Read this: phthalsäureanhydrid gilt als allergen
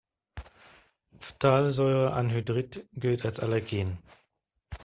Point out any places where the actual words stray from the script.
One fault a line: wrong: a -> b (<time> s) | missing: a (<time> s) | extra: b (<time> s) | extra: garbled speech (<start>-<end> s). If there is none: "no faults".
no faults